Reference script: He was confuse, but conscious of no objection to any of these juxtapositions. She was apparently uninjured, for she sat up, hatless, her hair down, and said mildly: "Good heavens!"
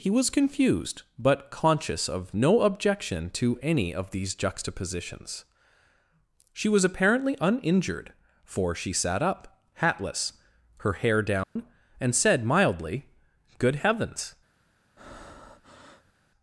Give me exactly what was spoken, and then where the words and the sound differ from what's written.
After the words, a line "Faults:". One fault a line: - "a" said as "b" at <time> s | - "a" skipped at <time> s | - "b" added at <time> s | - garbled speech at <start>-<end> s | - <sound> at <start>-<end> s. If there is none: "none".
He was confused, but conscious of no objection to any of these juxtapositions. She was apparently uninjured, for she sat up, hatless, her hair down, and said mildly: "Good heavens!"
Faults:
- "confuse" said as "confused" at 0.3 s
- dropout at 11.4-11.6 s
- breath at 15.0-16.1 s